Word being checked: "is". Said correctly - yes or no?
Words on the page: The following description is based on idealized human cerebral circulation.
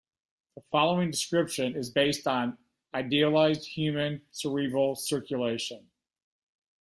yes